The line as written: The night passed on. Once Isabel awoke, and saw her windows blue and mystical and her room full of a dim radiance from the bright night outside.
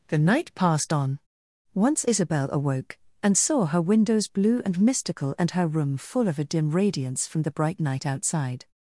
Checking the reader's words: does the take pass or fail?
pass